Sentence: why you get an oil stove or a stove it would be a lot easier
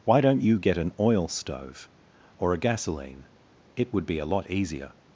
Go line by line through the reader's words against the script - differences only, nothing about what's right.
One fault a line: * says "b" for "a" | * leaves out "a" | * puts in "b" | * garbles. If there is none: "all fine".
* puts in "don't"
* says "gasoline" for "stove"